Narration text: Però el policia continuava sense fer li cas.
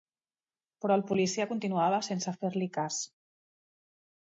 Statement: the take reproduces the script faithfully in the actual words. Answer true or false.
true